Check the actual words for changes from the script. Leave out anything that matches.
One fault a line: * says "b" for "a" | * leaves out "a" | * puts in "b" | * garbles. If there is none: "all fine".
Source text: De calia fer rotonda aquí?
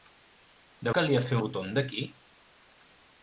all fine